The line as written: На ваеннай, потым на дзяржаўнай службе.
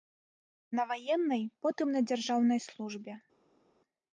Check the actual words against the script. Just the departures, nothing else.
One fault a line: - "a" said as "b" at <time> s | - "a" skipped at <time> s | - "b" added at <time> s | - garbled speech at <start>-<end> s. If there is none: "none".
none